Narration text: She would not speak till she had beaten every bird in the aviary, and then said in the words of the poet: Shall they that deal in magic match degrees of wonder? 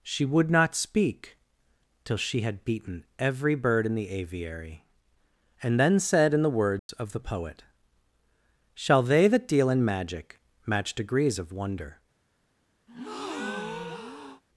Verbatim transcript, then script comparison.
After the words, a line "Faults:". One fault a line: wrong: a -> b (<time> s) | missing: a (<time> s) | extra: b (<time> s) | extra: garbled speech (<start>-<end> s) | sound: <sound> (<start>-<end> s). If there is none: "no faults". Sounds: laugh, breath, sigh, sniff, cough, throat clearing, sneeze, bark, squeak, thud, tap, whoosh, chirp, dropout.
She would not speak till she had beaten every bird in the aviary, and then said in the words of the poet: Shall they that deal in magic match degrees of wonder?
Faults:
sound: dropout (6.8-6.9 s)
sound: breath (12.9-14.4 s)